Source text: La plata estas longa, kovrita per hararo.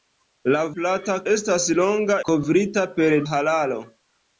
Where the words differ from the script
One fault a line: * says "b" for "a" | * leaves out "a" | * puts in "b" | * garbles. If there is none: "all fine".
all fine